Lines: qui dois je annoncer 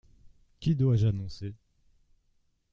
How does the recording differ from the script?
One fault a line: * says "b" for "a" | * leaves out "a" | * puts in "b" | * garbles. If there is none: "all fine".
all fine